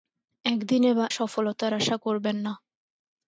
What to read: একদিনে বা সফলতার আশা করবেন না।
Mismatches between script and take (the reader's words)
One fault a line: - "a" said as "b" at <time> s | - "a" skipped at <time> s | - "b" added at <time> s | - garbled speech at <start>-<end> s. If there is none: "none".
none